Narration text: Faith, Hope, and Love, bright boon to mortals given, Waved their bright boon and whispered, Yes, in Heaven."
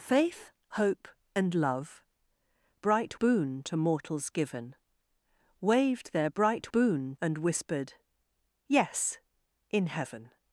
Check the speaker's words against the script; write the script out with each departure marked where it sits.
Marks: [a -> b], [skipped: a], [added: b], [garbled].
Faith, Hope, and Love, bright boon to mortals given, Waved their bright boon and whispered, Yes, in Heaven."